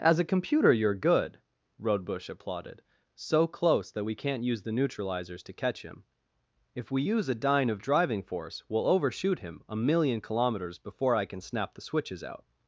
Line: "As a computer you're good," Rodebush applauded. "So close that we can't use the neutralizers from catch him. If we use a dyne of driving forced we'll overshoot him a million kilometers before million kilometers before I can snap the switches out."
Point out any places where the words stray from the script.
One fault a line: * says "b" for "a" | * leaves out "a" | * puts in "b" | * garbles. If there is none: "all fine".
* says "to" for "from"
* says "force" for "forced"
* leaves out "million kilometers before"